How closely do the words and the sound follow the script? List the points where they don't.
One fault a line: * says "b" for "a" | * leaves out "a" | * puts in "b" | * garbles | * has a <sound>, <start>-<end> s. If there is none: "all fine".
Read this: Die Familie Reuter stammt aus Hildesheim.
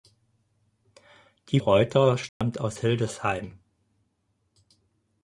* leaves out "Familie"
* has a dropout, 2.3-2.4 s